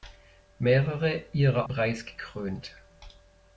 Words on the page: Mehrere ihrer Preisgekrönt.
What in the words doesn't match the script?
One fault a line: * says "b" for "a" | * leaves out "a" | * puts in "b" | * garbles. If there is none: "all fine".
all fine